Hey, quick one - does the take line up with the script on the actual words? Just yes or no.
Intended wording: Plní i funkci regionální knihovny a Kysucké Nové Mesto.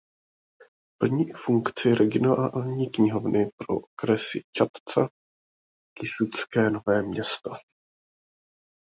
no